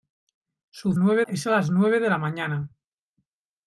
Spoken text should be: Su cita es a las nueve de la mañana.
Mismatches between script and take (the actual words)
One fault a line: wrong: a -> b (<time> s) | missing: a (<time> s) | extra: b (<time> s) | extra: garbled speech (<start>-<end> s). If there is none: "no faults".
wrong: cita -> nueve (1.0 s)